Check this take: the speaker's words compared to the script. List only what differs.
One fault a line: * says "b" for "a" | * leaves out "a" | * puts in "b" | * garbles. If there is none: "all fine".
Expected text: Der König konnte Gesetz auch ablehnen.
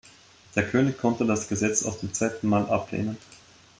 * puts in "das"
* puts in "zum zweiten Mal"